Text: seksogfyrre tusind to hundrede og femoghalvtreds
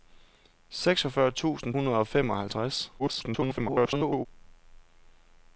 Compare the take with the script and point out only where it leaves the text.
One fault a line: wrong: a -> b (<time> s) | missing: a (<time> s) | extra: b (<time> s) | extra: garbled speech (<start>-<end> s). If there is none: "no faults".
missing: to (1.8 s)
extra: garbled speech (3.0-4.3 s)